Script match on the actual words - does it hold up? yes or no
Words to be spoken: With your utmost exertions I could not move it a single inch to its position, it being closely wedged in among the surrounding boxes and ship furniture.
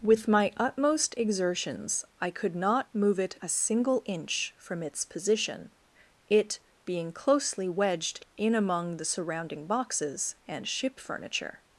no